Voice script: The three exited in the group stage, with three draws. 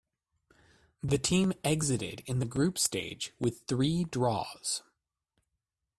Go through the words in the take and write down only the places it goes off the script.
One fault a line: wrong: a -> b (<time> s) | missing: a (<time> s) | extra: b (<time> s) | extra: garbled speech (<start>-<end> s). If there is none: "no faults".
wrong: three -> team (1.2 s)